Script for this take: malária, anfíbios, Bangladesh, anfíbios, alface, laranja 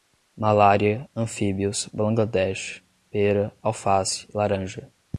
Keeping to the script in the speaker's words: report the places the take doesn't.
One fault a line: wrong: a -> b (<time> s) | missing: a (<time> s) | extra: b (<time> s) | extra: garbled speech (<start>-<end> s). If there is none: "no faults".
wrong: anfíbios -> pera (3.1 s)